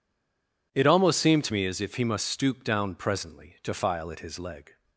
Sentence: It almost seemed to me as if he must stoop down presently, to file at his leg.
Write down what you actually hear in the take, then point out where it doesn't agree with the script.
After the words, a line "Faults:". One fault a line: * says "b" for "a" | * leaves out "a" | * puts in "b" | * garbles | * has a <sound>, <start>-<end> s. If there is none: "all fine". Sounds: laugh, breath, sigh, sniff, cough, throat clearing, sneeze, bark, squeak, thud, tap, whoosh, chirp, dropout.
It almost seemed to me as if he must stoop down presently, to file at his leg.
Faults:
all fine